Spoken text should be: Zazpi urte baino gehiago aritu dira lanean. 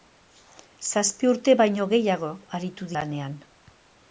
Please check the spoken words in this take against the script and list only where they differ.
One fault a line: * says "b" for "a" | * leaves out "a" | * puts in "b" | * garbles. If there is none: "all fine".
* leaves out "dira"